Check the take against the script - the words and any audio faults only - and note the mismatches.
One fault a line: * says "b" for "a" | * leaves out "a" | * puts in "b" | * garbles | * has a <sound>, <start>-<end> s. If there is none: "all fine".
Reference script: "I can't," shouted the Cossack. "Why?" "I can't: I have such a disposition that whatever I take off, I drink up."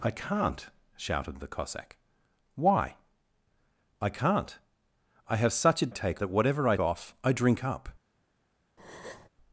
* says "take" for "disposition"
* leaves out "take"
* has a breath, 8.8-9.3 s